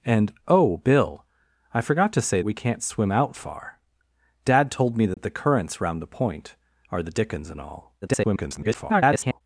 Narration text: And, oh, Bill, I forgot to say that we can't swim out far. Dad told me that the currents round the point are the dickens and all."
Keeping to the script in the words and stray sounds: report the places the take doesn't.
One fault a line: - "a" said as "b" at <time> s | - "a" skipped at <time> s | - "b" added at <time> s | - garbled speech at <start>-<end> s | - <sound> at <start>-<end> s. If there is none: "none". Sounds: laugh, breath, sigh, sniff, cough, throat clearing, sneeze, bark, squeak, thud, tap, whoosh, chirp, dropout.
- "that" skipped at 2.4 s
- dropout at 5.1-5.2 s
- garbled speech at 8.0-9.4 s